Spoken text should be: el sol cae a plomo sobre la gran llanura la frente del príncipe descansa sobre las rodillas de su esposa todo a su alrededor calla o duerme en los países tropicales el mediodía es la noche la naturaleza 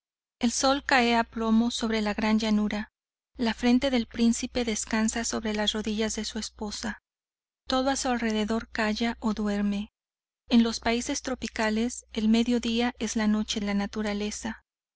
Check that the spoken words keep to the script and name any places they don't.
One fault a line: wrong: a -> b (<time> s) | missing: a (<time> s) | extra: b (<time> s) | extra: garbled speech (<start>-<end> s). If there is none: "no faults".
no faults